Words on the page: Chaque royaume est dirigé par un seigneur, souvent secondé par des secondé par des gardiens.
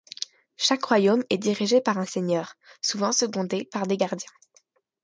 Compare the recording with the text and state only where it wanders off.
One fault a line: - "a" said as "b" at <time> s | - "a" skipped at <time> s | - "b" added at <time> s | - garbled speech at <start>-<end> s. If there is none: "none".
- "secondé par des" skipped at 4.0 s